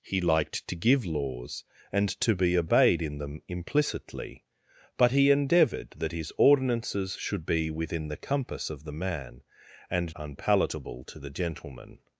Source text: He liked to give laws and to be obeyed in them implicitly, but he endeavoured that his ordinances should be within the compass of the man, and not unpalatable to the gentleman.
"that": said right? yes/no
yes